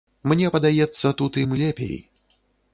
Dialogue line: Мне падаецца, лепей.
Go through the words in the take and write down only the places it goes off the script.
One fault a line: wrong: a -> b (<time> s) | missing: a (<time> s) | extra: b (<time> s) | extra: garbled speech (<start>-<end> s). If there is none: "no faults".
extra: тут ім (1.2 s)